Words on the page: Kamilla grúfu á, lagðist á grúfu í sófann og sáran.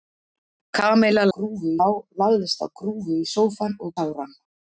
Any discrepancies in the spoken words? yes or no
no